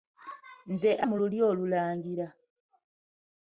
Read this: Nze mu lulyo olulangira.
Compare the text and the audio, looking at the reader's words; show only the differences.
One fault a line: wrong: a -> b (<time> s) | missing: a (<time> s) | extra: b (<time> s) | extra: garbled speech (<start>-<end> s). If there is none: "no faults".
no faults